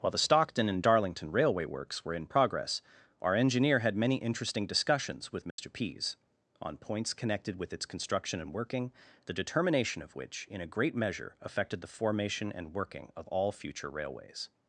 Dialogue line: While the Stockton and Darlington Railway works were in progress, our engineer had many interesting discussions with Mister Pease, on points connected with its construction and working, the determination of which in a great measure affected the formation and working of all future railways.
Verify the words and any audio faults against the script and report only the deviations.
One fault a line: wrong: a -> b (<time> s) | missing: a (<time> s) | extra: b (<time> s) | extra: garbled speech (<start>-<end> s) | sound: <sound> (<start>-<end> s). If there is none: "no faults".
sound: dropout (5.5-5.6 s)